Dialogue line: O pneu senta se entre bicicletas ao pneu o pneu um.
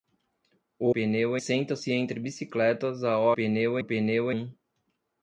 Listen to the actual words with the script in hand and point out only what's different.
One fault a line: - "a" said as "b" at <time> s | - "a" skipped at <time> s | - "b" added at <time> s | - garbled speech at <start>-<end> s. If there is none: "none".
none